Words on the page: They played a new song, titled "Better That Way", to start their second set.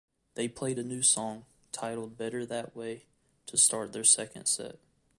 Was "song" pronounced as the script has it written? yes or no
yes